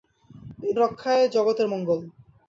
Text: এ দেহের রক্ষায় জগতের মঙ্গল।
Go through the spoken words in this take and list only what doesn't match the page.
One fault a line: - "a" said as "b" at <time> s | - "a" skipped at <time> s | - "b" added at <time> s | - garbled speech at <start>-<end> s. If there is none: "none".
- "দেহের" skipped at 0.8 s